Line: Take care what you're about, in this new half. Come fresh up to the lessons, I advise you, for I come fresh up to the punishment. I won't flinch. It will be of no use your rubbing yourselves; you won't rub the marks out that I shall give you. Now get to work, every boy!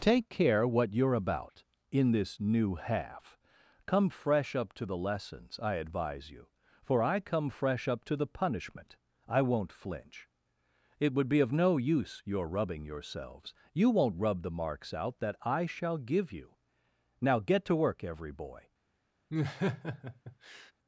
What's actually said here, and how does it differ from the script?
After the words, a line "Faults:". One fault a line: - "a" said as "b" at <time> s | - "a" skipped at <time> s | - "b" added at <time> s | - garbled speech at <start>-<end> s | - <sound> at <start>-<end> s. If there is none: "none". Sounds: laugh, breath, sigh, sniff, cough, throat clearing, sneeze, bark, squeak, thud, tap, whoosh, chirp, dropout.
Take care what you're about, in this new half. Come fresh up to the lessons, I advise you, for I come fresh up to the punishment. I won't flinch. It would be of no use your rubbing yourselves; you won't rub the marks out that I shall give you. Now get to work, every boy!
Faults:
- "will" said as "would" at 11.1 s
- laugh at 19.3-20.7 s